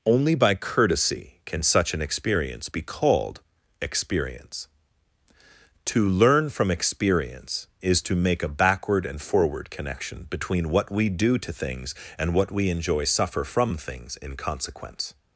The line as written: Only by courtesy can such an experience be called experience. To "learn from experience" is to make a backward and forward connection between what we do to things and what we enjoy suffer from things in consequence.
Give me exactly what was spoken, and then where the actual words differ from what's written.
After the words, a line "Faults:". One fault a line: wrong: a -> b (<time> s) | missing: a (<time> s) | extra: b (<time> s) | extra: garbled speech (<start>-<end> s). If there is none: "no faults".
Only by courtesy can such an experience be called experience. To "learn from experience" is to make a backward and forward connection between what we do to things and what we enjoy suffer from things in consequence.
Faults:
no faults